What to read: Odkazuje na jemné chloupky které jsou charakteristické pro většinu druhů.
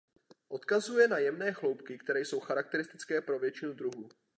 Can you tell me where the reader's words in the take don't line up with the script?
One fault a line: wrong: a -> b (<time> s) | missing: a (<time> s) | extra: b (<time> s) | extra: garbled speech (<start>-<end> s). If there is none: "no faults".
no faults